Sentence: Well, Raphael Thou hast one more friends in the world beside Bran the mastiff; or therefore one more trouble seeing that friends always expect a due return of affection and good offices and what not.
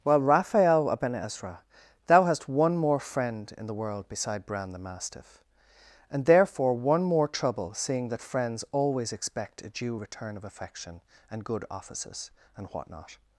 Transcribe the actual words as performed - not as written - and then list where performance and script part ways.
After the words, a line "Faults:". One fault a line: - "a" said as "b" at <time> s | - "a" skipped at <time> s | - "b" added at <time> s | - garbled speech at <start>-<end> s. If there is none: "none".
Well, Raphael Aben Ezra, thou hast one more friend in the world beside Bran the mastiff; and therefore one more trouble seeing that friends always expect a due return of affection and good offices and what not.
Faults:
- "Aben Ezra" added at 0.9 s
- "friends" said as "friend" at 3.0 s
- "or" said as "and" at 6.1 s